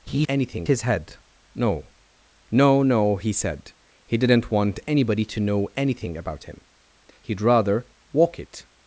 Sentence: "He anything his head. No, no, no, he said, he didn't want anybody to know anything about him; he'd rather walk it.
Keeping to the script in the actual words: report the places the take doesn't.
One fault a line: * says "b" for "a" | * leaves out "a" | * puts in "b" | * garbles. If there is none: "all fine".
all fine